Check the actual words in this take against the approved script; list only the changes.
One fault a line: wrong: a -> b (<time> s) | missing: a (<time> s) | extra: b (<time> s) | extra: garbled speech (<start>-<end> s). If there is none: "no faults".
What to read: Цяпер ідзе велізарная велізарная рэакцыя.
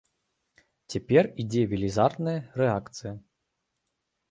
missing: велізарная (2.4 s)